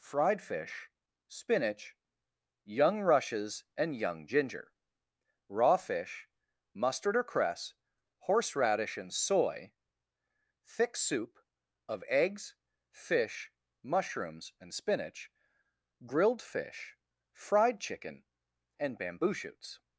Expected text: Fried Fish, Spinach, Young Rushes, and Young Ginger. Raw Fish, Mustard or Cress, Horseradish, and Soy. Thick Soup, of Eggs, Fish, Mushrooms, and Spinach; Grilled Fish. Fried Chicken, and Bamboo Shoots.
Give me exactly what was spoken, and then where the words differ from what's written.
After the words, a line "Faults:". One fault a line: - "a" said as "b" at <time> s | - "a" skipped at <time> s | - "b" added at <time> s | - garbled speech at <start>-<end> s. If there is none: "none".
Fried Fish, Spinach, Young Rushes, and Young Ginger. Raw Fish, Mustard or Cress, Horseradish, and Soy. Thick Soup, of Eggs, Fish, Mushrooms, and Spinach; Grilled Fish. Fried Chicken, and Bamboo Shoots.
Faults:
none